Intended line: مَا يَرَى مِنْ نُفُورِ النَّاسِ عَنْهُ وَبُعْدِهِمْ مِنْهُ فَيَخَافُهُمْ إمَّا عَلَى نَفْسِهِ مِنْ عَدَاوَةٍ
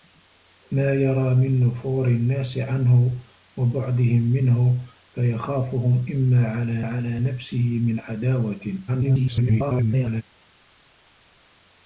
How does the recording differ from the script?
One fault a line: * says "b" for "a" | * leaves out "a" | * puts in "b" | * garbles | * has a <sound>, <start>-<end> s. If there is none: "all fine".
* puts in "عَلَى"
* garbles